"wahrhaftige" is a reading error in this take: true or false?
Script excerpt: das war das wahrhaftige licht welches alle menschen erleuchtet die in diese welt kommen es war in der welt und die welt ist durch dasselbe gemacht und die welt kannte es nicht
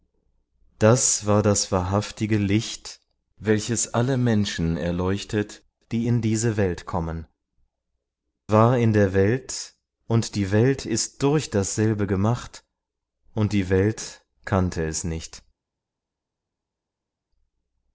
false